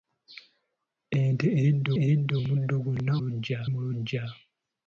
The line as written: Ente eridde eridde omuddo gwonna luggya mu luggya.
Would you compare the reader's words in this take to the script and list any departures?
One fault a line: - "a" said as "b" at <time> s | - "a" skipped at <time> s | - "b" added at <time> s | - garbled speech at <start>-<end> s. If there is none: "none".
none